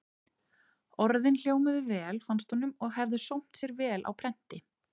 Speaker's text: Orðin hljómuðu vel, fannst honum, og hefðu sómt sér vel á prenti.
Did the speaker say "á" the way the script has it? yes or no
yes